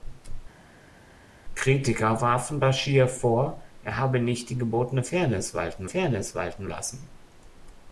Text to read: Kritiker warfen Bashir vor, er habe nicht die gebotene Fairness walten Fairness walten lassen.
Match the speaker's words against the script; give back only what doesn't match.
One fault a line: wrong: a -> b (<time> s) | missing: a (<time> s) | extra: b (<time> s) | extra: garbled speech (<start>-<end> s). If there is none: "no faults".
no faults